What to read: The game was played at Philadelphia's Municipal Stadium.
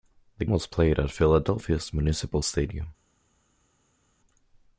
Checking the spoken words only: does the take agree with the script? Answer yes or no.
no